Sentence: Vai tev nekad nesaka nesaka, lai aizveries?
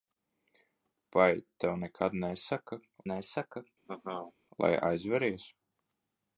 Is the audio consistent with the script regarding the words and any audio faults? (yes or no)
no